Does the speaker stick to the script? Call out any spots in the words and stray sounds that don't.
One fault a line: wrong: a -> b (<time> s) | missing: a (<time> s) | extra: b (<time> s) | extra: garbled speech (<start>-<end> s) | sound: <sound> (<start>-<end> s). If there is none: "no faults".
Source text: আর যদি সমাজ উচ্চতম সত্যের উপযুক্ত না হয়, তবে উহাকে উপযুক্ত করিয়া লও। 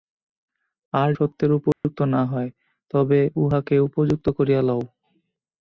missing: যদি সমাজ উচ্চতম (1.1 s)
sound: dropout (1.7-1.8 s)